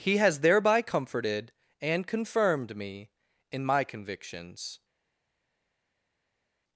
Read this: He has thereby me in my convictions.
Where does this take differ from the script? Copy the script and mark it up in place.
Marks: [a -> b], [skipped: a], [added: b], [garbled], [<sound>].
He has thereby [added: comforted and confirmed] me in my convictions.